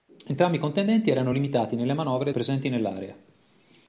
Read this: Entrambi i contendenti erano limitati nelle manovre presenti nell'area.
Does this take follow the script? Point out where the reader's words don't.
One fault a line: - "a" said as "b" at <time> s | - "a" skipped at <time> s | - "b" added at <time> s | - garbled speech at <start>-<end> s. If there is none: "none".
none